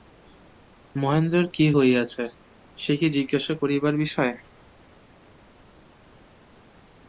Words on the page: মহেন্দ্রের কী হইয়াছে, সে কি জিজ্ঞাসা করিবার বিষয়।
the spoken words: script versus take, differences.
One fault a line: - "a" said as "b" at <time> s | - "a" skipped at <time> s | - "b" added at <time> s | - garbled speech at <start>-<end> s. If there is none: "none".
none